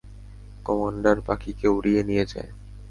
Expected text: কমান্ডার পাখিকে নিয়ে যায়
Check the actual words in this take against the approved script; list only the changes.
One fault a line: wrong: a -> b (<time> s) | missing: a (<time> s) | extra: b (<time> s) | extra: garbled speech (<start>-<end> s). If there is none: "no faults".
extra: উড়িয়ে (1.7 s)